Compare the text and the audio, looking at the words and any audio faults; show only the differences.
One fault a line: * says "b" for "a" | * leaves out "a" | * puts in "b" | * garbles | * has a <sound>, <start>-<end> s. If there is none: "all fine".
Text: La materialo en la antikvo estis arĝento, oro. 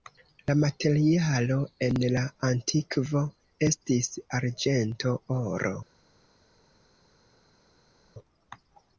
all fine